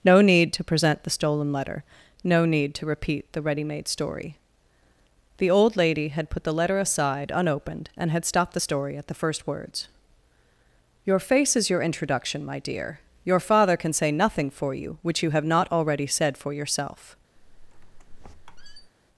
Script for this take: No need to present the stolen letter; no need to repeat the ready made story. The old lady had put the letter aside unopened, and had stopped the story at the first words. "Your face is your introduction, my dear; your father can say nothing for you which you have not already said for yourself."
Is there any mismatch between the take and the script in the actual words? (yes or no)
no